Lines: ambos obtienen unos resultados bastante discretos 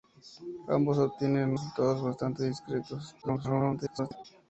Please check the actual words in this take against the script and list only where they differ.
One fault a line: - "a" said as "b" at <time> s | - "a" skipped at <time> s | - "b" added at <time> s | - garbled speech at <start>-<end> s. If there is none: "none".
- "unos" skipped at 1.6 s
- garbled speech at 3.2-4.2 s